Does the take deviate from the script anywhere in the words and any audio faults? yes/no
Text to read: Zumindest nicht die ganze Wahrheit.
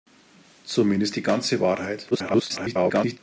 yes